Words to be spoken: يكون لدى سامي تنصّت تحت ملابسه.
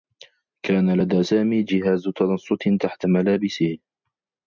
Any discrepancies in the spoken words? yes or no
yes